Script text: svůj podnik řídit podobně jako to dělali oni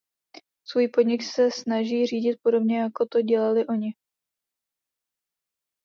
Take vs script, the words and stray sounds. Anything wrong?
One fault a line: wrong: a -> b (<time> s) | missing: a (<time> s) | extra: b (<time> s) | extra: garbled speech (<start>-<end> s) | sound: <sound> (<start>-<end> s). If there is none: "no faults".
extra: se snaží (1.2 s)